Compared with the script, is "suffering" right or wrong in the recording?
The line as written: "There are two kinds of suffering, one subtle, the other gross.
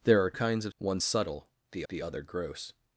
wrong